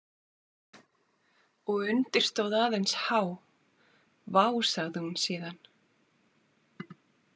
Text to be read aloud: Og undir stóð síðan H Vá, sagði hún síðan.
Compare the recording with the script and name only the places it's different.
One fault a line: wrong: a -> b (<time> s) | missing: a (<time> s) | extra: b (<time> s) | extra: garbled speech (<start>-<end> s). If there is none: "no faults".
wrong: síðan -> aðeins (2.6 s)